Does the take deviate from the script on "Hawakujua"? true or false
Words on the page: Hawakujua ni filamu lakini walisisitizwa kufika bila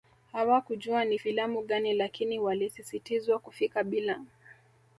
false